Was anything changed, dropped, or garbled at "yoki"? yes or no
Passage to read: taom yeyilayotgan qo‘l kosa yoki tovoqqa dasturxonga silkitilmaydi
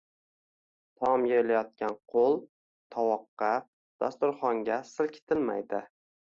yes